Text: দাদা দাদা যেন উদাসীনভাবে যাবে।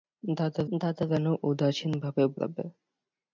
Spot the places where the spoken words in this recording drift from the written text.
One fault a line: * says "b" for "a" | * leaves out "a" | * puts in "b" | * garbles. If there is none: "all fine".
all fine